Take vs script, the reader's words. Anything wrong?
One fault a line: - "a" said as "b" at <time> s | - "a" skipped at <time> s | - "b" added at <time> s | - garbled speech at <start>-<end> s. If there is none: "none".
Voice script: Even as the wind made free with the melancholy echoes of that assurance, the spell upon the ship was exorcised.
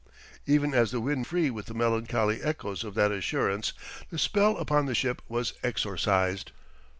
- "made" skipped at 1.2 s